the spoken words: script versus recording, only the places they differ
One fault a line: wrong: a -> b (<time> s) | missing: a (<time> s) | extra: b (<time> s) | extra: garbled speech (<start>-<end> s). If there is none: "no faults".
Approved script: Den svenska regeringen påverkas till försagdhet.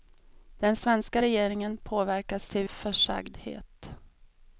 no faults